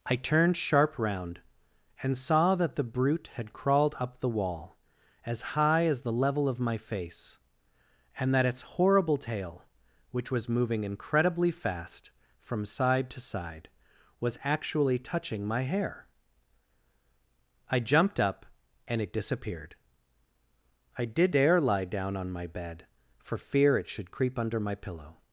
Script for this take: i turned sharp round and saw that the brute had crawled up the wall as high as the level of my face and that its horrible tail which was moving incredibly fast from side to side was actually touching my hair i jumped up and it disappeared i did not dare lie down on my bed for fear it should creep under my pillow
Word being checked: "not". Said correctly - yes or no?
no